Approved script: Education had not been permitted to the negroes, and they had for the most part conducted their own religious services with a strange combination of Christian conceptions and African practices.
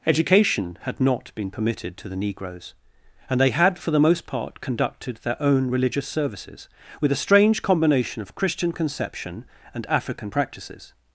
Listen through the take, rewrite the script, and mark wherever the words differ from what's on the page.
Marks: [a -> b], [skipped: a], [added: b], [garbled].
Education had not been permitted to the negroes, and they had for the most part conducted their own religious services with a strange combination of Christian [conceptions -> conception] and African practices.